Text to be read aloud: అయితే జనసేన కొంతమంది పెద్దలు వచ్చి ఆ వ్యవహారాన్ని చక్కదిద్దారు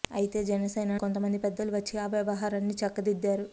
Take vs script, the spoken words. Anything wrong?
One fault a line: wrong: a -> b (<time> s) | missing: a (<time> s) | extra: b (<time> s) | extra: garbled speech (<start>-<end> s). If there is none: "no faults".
no faults